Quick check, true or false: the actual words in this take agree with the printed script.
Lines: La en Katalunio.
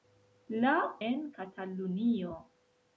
true